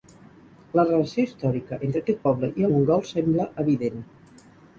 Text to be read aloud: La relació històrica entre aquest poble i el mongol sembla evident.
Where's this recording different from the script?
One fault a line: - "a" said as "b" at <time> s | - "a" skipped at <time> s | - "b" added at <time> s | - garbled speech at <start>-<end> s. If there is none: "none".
- "el" skipped at 2.7 s